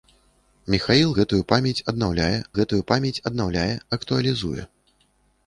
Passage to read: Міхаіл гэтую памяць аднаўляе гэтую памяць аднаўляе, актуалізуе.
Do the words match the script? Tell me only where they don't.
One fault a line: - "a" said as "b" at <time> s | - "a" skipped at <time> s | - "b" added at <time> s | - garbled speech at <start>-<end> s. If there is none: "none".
none